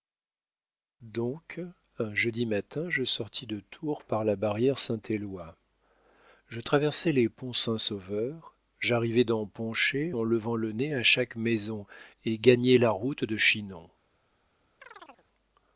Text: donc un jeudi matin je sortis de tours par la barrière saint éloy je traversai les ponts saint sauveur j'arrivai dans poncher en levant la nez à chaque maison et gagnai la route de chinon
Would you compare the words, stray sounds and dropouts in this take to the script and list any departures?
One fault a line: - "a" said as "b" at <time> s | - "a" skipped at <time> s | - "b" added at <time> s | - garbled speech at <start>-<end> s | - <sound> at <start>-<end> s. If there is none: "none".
- "la" said as "le" at 10.6 s
- chirp at 14.8-15.3 s